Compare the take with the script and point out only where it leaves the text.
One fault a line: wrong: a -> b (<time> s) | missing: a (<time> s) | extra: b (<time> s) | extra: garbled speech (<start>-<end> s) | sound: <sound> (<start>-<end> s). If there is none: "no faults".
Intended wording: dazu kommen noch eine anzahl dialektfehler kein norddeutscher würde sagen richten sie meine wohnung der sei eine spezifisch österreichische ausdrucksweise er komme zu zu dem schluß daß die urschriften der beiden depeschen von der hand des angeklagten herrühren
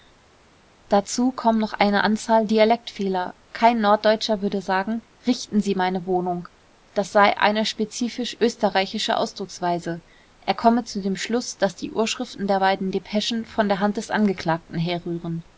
wrong: der -> das (6.9 s)
missing: zu (11.0 s)